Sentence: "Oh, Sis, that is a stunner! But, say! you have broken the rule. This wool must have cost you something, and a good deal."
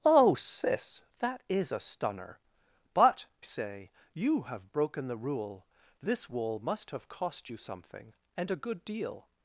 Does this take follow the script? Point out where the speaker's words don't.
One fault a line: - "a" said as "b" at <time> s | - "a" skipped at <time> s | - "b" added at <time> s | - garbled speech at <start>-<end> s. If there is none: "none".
none